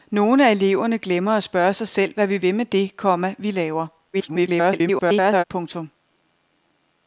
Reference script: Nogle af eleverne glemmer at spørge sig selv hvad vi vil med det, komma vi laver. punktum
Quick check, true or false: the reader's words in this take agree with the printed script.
false